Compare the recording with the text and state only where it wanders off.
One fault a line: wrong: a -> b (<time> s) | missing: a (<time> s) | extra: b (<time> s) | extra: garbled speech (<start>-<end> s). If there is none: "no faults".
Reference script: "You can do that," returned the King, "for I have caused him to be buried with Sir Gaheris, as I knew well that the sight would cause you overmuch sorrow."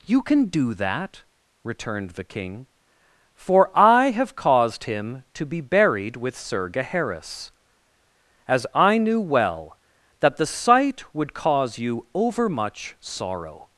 no faults